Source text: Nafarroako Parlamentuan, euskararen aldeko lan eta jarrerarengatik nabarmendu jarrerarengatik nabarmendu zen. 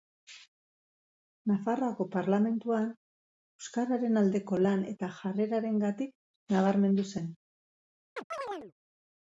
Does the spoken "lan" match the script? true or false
true